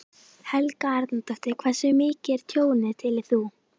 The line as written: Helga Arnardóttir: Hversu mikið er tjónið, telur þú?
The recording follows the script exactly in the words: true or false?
true